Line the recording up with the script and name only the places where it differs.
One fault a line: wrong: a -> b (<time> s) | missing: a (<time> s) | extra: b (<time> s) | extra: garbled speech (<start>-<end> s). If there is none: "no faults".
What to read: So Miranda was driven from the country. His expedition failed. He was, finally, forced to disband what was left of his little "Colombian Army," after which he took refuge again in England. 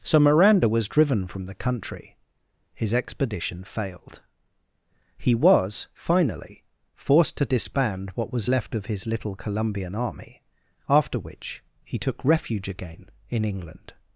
no faults